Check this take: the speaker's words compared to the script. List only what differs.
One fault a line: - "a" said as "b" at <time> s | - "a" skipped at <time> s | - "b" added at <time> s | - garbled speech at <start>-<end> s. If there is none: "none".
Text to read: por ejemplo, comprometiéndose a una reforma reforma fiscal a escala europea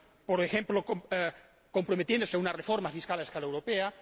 - "reforma" skipped at 2.9 s